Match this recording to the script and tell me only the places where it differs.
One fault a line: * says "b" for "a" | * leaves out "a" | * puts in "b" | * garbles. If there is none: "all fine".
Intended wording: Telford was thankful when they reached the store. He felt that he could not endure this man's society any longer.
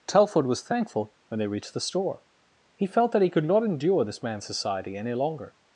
all fine